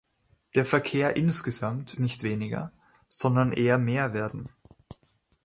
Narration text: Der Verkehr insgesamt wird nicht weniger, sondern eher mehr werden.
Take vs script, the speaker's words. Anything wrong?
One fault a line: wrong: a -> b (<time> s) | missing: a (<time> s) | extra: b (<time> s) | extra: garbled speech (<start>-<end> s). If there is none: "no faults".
missing: wird (2.0 s)